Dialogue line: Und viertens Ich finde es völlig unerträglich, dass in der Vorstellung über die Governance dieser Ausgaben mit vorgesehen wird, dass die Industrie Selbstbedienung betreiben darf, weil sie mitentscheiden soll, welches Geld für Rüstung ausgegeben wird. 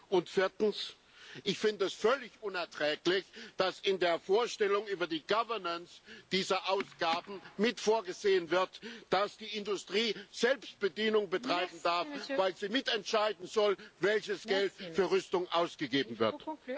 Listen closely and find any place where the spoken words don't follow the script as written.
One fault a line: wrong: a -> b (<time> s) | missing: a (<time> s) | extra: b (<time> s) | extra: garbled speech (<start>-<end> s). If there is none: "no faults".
no faults